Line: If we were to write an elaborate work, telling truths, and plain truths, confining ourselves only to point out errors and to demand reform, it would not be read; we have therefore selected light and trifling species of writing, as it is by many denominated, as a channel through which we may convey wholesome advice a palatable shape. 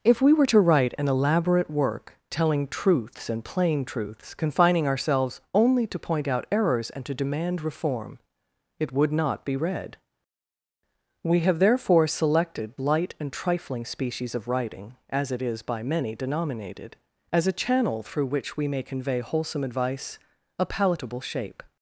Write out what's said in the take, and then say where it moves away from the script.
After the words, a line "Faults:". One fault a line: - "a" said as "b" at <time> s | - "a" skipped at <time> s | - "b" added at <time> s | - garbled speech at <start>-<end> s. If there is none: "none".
If we were to write an elaborate work, telling truths, and plain truths, confining ourselves only to point out errors and to demand reform, it would not be read; we have therefore selected light and trifling species of writing, as it is by many denominated, as a channel through which we may convey wholesome advice a palatable shape.
Faults:
none